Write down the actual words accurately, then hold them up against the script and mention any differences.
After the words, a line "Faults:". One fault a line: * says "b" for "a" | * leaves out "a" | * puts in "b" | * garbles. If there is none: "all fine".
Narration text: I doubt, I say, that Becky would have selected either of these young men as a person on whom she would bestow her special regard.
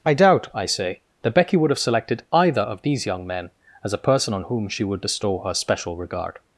I doubt, I say, that Becky would have selected either of these young men as a person on whom she would bestow her special regard.
Faults:
all fine